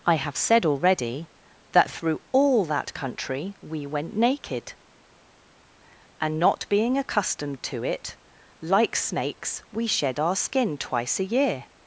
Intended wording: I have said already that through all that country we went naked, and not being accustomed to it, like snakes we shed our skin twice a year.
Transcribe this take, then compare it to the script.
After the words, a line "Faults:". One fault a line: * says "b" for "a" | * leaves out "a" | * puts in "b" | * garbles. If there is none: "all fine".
I have said already that through all that country we went naked, and not being accustomed to it, like snakes we shed our skin twice a year.
Faults:
all fine